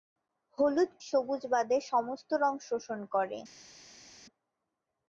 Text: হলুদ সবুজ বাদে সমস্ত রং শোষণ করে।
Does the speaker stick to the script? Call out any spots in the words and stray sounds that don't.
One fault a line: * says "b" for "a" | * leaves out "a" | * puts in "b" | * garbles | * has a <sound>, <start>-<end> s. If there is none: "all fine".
all fine